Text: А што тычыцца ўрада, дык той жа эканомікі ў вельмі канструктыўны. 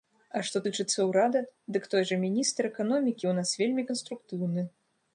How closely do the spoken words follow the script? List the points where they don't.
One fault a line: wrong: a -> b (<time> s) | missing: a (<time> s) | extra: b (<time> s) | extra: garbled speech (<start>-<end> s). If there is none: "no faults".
extra: міністр (2.2 s)
extra: нас (3.4 s)